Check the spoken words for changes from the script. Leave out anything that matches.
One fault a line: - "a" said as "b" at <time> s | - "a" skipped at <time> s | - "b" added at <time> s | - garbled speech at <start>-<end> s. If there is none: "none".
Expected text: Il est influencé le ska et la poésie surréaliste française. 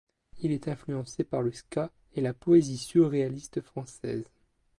- "par" added at 1.2 s